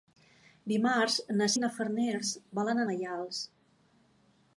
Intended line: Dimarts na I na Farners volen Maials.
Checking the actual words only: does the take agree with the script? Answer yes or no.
yes